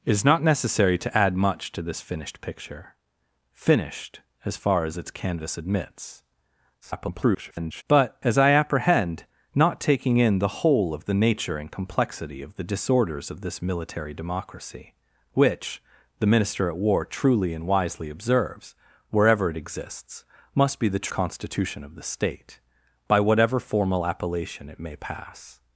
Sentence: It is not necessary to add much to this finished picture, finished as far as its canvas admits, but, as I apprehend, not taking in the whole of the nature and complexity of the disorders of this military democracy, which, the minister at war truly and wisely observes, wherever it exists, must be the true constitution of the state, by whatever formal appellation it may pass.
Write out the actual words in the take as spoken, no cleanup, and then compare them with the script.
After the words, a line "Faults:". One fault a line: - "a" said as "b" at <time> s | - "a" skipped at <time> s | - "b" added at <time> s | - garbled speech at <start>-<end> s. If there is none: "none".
It is not necessary to add much to this finished picture, finished as far as its canvas admits, [garbled] but, as I apprehend, not taking in the whole of the nature and complexity of the disorders of this military democracy, which, the minister at war truly and wisely observes, wherever it exists, must be the constitution of the state, by whatever formal appellation it may pass.
Faults:
- garbled speech at 6.8-7.8 s
- "true" skipped at 21.1 s